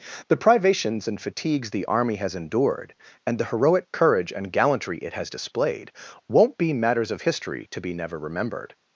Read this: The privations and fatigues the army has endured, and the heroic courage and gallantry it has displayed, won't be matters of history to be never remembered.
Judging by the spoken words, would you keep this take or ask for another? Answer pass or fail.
pass